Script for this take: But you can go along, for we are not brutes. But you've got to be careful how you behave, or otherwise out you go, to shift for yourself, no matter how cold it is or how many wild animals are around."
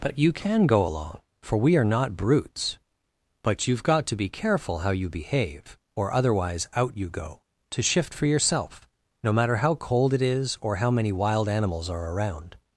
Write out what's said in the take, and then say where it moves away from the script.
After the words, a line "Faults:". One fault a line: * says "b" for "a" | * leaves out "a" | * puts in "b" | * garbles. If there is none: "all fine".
But you can go along, for we are not brutes. But you've got to be careful how you behave, or otherwise out you go, to shift for yourself, no matter how cold it is or how many wild animals are around."
Faults:
all fine